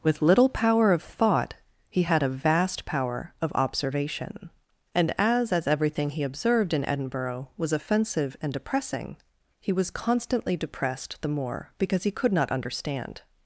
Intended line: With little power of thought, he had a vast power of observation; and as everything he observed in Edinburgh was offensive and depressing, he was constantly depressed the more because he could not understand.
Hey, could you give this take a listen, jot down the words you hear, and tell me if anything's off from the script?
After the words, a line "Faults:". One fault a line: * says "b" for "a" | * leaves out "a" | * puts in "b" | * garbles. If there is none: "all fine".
With little power of thought, he had a vast power of observation; and as as everything he observed in Edinburgh was offensive and depressing, he was constantly depressed the more because he could not understand.
Faults:
* puts in "as"